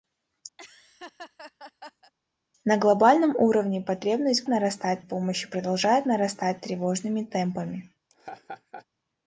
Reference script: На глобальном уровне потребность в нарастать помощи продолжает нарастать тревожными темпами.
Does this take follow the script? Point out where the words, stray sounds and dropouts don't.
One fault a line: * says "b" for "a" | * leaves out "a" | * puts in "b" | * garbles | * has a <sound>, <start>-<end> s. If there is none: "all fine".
* has a laugh, 0.6-2.1 s
* has a laugh, 8.1-8.9 s